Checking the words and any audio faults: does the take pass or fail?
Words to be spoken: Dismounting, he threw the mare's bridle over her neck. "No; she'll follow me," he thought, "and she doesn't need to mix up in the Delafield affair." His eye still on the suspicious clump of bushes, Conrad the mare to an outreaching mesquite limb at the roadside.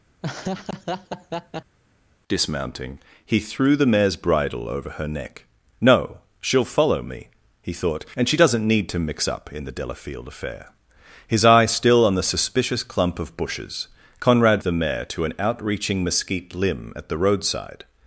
fail